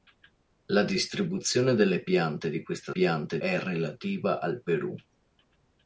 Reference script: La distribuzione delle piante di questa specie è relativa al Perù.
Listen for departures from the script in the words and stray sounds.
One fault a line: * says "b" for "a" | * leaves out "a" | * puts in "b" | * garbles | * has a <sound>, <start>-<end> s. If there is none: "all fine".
* says "piante" for "specie"